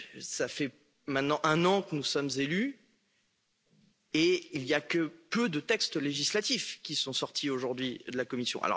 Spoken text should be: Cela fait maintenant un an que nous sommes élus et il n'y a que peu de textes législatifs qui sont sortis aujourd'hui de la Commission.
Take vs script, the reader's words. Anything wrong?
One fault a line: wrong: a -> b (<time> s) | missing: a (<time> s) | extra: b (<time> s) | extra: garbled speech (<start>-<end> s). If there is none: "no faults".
no faults